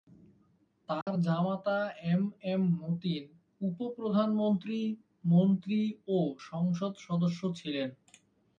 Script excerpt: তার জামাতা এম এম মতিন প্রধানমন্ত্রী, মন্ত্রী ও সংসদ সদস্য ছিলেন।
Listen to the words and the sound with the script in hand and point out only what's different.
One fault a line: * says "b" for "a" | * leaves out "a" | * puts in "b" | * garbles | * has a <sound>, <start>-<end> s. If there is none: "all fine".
* has a dropout, 1.0-1.1 s
* puts in "উপ"